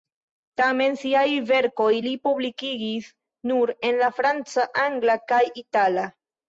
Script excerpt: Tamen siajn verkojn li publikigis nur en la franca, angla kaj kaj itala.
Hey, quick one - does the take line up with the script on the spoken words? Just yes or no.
no